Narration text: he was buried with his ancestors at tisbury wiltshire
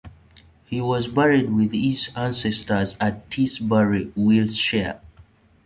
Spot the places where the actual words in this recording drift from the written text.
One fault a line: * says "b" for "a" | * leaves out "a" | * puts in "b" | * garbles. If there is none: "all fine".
all fine